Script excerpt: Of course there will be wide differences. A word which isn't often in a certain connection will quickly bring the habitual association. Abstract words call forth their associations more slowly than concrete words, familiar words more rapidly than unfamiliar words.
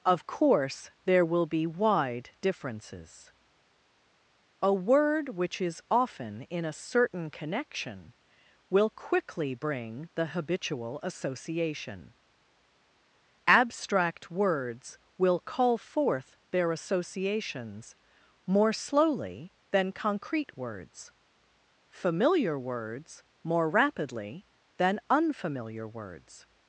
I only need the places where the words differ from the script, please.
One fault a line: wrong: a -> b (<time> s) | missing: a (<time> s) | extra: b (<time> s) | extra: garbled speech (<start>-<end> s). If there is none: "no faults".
wrong: isn't -> is (5.6 s)
extra: will (15.2 s)